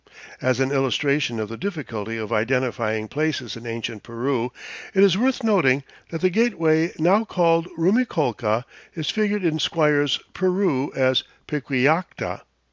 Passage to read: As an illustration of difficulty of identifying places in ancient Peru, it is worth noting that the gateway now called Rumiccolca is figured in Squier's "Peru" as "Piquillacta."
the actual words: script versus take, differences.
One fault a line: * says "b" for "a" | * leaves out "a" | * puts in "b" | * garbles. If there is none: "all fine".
* puts in "the"